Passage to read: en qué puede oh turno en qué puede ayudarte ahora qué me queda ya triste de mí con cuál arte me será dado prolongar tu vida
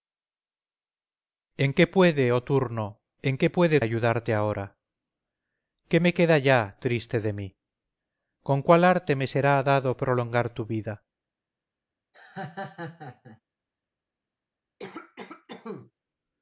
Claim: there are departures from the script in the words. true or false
false